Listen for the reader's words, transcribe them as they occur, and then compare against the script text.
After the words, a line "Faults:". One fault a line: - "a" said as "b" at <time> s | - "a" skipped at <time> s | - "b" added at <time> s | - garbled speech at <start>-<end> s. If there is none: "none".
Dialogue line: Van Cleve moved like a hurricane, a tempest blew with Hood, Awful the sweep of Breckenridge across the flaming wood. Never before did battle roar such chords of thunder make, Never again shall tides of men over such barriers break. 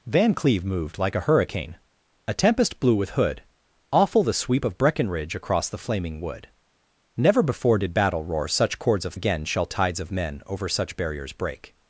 Van Cleve moved like a hurricane, a tempest blew with Hood, Awful the sweep of Breckenridge across the flaming wood. Never before did battle roar such chords of again shall tides of men over such barriers break.
Faults:
- "thunder make Never" skipped at 9.2 s